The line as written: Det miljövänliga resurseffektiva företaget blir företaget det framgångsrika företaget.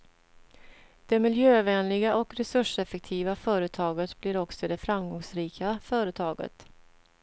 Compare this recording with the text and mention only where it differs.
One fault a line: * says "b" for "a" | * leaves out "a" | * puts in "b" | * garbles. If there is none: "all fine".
* puts in "och"
* says "också" for "företaget"